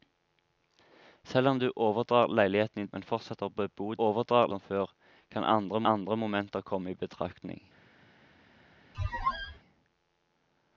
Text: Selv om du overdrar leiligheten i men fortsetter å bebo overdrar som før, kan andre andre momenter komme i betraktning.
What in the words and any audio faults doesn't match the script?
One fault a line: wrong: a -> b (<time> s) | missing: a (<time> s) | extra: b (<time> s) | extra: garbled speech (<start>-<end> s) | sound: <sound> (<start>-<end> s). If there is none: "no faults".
sound: squeak (8.9-9.6 s)